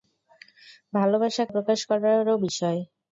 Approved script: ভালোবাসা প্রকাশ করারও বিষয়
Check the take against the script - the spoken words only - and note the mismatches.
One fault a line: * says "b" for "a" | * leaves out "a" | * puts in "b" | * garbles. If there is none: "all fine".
all fine